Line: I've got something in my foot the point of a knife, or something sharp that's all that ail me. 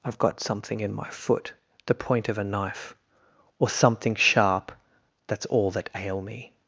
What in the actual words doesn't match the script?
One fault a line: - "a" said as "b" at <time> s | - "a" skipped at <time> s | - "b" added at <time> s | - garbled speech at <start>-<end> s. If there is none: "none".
none